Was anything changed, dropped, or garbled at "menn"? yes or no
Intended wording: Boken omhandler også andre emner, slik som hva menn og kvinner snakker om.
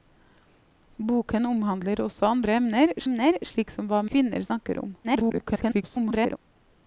yes